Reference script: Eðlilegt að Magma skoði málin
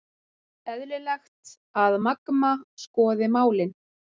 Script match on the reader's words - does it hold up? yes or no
yes